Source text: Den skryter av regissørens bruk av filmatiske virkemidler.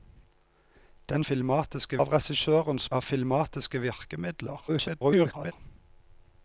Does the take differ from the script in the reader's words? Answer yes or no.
yes